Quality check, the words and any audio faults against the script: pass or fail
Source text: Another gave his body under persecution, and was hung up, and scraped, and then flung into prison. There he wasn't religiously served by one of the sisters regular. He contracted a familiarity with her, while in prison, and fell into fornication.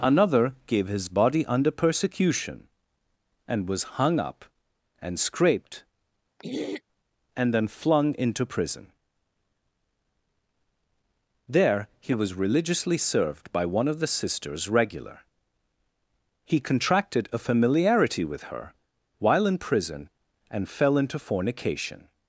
fail